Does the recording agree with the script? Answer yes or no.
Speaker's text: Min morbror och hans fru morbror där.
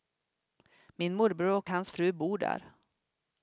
no